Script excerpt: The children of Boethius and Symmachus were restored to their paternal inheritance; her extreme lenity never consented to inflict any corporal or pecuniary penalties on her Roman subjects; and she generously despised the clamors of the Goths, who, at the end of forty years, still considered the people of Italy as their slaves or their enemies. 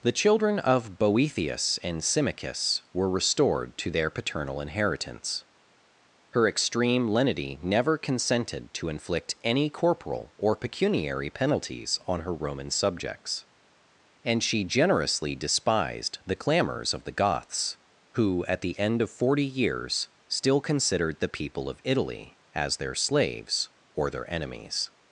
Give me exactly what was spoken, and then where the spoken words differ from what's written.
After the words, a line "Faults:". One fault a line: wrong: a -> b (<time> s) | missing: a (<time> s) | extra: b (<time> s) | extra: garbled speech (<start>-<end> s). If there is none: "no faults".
The children of Boethius and Symmachus were restored to their paternal inheritance; her extreme lenity never consented to inflict any corporal or pecuniary penalties on her Roman subjects; and she generously despised the clamors of the Goths, who, at the end of forty years, still considered the people of Italy as their slaves or their enemies.
Faults:
no faults